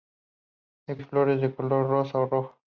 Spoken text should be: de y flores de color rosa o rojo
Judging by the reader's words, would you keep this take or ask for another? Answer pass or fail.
pass